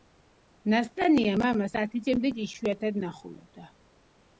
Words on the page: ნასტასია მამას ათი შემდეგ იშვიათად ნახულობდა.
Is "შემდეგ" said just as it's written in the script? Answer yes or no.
yes